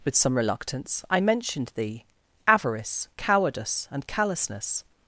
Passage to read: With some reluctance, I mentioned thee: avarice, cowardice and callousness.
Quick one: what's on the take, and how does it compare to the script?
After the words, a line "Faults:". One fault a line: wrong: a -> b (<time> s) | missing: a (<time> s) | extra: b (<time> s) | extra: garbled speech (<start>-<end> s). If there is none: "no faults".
With some reluctance, I mentioned thee: avarice, cowardice and callousness.
Faults:
no faults